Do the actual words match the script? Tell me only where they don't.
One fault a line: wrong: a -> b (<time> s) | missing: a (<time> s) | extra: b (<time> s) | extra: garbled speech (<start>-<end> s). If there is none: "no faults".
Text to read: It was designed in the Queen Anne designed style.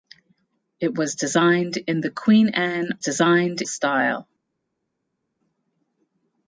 no faults